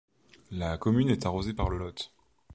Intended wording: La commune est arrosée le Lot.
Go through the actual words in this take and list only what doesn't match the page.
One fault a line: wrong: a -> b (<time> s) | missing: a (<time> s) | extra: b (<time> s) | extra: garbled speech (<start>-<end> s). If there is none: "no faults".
extra: par (1.5 s)